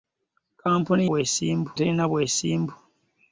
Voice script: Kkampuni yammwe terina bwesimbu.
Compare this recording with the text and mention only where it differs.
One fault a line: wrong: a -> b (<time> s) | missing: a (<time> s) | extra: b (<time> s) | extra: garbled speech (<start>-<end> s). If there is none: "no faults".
wrong: yammwe -> bwesimbu (1.1 s)